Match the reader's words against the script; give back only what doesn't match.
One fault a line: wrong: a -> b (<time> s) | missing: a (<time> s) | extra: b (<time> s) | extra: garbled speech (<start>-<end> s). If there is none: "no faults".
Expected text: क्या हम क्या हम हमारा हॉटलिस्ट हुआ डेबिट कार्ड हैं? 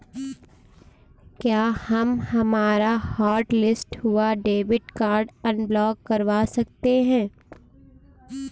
missing: क्या हम (2.2 s)
extra: अनब्लॉक करवा सकते (5.5 s)